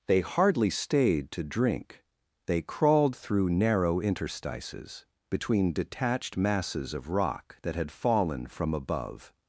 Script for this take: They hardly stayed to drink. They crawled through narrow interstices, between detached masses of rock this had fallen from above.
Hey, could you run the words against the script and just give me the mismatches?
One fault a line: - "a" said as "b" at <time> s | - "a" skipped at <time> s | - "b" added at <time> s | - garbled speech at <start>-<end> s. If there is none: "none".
- "this" said as "that" at 7.6 s